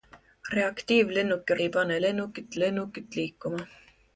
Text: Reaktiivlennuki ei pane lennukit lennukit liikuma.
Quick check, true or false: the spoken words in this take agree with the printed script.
true